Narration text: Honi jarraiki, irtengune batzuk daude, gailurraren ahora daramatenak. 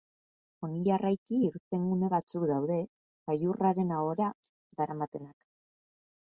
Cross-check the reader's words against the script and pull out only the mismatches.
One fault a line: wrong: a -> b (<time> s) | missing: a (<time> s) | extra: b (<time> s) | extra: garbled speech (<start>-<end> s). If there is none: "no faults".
no faults